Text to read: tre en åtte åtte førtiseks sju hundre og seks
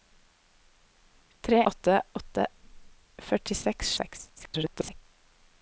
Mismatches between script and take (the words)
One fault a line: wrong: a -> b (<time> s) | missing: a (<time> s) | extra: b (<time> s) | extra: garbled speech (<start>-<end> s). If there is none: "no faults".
missing: en (1.6 s)
missing: sju hundre (3.9 s)
extra: garbled speech (4.4-5.0 s)